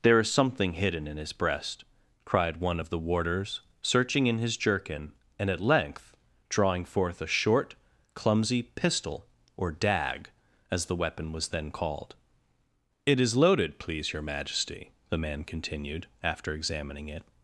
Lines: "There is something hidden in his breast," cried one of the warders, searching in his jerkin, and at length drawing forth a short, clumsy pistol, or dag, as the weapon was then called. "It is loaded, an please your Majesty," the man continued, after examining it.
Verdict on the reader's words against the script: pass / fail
fail